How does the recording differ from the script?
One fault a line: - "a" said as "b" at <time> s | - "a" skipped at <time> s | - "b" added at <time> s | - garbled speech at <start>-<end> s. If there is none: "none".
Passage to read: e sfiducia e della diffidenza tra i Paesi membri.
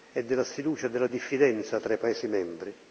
- "della" added at 0.2 s